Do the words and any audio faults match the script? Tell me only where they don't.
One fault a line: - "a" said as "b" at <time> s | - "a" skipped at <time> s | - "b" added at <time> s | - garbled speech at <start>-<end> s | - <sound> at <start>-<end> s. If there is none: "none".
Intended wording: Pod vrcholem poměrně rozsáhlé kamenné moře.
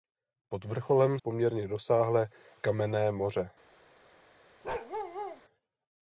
- bark at 4.6-5.4 s